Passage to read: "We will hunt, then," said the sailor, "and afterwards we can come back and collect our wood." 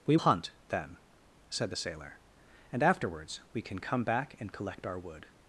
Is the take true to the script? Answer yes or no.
no